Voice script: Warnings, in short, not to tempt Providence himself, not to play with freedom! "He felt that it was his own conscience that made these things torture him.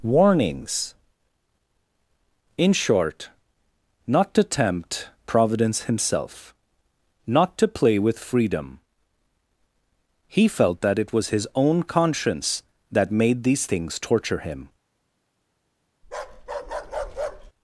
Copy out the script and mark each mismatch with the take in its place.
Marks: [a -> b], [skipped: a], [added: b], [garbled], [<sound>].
Warnings, in short, not to tempt Providence himself, not to play with freedom! "He felt that it was his own conscience that made these things torture him. [bark]